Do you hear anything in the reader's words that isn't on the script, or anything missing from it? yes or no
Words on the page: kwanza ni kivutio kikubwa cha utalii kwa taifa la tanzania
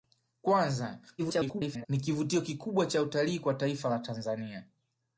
yes